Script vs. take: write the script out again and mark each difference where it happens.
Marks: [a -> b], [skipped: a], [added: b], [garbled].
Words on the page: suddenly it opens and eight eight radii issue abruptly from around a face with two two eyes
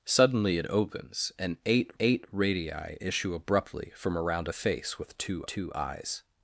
suddenly it opens and eight eight radii issue abruptly from around a face with two two eyes